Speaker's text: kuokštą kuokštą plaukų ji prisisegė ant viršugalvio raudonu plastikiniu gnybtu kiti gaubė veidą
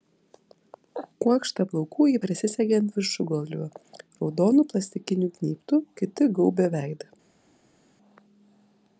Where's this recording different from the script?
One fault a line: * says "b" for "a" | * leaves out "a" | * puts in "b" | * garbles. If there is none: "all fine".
* leaves out "kuokštą"